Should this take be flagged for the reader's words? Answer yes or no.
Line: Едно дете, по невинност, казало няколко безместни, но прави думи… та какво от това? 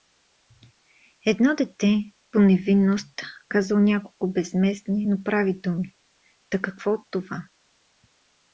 no